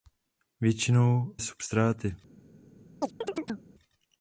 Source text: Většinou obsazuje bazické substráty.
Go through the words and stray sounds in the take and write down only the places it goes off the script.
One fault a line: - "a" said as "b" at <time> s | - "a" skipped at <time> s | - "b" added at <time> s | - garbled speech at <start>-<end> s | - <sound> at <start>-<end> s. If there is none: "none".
- "obsazuje bazické" skipped at 1.4 s
- chirp at 3.0-3.7 s